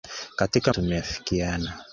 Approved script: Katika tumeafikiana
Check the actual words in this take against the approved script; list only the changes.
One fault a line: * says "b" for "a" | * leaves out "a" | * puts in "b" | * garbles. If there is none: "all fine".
all fine